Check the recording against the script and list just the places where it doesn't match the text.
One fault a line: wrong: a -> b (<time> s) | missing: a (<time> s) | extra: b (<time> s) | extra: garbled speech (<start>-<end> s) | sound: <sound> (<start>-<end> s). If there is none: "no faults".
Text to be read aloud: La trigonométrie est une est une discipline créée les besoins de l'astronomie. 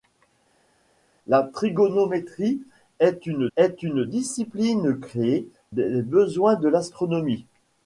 no faults